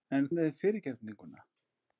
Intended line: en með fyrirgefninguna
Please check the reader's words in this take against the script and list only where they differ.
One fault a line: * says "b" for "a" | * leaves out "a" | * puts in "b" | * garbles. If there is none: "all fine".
all fine